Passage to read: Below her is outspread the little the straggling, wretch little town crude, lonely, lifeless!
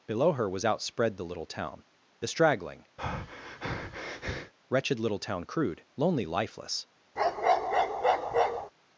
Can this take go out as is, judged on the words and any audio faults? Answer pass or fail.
fail